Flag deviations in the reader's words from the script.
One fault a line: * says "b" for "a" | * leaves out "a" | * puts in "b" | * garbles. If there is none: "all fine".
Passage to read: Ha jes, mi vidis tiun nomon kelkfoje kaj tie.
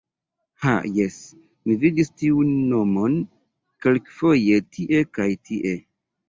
* puts in "tie"